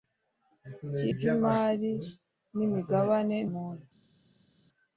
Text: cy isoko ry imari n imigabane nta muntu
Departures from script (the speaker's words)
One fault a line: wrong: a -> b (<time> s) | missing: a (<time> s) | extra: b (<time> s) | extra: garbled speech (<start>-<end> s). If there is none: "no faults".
missing: isoko (1.0 s)
missing: nta (3.4 s)